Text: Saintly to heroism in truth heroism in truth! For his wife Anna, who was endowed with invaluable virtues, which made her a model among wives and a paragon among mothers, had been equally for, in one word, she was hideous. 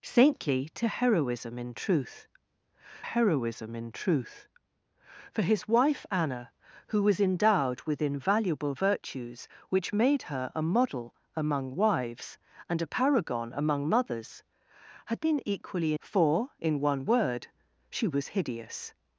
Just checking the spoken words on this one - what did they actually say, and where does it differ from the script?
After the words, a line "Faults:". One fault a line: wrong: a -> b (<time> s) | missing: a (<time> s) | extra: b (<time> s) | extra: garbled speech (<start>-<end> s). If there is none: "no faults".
Saintly to heroism in truth heroism in truth! For his wife Anna, who was endowed with invaluable virtues, which made her a model among wives and a paragon among mothers, had been equally for, in one word, she was hideous.
Faults:
no faults